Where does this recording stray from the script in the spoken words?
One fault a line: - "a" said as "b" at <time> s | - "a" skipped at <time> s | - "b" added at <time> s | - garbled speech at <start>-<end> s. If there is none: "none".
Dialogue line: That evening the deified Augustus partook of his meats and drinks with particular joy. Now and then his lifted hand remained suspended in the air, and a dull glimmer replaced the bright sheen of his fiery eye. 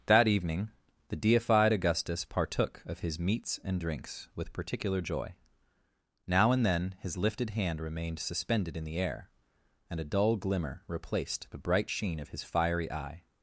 none